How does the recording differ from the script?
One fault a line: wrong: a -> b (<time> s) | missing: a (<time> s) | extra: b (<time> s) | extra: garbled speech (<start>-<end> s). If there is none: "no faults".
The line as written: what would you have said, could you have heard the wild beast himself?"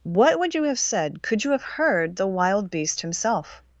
no faults